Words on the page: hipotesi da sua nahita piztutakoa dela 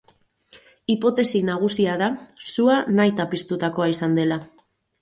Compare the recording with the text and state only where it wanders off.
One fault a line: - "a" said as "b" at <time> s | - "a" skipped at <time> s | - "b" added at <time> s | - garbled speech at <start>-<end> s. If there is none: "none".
- "nagusia" added at 1.5 s
- "izan" added at 4.0 s